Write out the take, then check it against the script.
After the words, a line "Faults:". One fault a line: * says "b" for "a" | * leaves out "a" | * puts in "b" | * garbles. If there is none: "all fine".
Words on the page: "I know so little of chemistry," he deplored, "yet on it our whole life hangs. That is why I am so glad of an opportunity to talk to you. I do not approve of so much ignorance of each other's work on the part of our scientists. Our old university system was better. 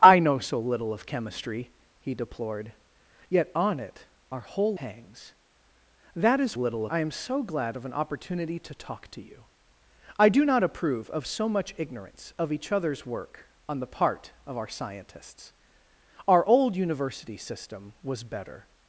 "I know so little of chemistry," he deplored, "yet on it our whole hangs. That is little I am so glad of an opportunity to talk to you. I do not approve of so much ignorance of each other's work on the part of our scientists. Our old university system was better.
Faults:
* leaves out "life"
* says "little" for "why"